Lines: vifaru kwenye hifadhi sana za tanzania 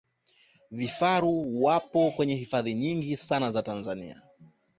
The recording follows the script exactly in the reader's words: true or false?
false